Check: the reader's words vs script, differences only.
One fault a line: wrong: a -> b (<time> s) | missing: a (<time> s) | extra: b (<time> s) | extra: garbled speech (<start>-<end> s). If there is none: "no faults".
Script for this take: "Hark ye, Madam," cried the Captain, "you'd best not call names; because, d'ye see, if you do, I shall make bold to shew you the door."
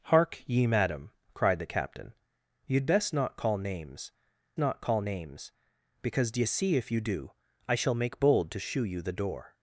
extra: not call names (4.6 s)